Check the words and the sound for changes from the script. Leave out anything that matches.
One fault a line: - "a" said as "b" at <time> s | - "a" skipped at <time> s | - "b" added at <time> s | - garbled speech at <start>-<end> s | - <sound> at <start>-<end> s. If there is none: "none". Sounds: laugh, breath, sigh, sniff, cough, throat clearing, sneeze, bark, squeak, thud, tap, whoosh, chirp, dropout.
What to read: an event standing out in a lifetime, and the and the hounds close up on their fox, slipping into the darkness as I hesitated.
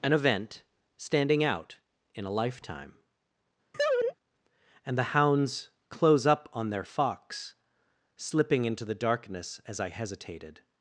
- laugh at 3.7-4.2 s
- "and the" skipped at 5.1 s